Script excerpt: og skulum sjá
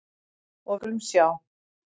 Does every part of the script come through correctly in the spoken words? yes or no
yes